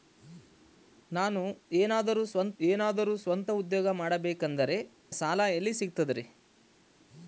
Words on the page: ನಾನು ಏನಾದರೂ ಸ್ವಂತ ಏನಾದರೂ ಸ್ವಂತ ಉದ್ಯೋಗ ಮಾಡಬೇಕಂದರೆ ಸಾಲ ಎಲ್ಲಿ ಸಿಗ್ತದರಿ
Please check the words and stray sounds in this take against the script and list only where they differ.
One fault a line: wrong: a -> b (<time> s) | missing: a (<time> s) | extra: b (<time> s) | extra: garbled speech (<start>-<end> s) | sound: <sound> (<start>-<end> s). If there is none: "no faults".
no faults